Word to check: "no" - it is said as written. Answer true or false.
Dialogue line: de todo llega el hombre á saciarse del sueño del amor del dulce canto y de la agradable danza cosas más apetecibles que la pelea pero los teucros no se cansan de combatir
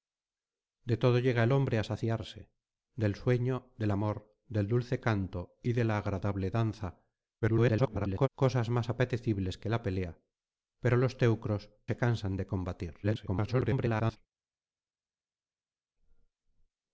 false